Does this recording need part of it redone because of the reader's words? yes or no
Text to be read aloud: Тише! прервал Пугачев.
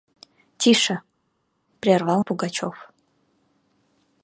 no